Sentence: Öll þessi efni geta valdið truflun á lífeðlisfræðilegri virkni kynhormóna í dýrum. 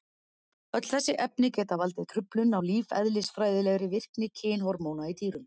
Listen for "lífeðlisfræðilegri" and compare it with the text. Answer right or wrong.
right